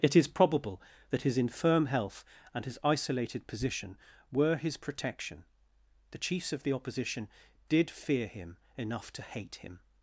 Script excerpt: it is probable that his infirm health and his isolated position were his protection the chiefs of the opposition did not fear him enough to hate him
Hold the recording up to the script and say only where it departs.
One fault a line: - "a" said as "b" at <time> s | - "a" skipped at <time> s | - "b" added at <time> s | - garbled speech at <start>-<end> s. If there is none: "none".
- "not" skipped at 7.9 s